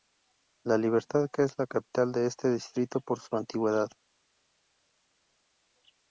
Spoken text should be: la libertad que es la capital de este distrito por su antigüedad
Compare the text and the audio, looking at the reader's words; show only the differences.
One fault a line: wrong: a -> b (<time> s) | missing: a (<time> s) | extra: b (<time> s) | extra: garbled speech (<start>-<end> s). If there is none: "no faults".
no faults